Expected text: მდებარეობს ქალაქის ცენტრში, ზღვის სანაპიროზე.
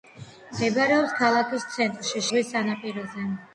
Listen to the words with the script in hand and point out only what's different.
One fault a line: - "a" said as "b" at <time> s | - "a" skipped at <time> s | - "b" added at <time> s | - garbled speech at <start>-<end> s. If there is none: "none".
none